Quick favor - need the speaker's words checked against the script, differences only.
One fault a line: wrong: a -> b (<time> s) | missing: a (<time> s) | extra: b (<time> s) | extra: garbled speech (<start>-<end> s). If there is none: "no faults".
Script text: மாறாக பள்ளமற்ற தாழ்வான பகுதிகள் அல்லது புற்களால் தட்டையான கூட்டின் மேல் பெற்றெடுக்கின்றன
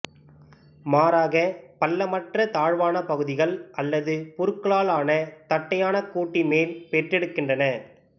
extra: ஆன (4.9 s)